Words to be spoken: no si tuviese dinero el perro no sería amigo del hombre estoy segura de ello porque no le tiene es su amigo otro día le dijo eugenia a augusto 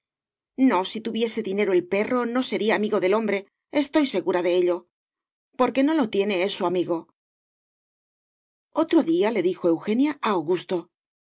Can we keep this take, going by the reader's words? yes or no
no